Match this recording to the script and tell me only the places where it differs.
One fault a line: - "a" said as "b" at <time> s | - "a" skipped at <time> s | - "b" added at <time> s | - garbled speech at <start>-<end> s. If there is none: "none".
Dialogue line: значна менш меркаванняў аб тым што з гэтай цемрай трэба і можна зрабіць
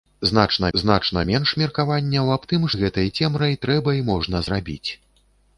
- "значна" added at 0.8 s
- "што" skipped at 2.7 s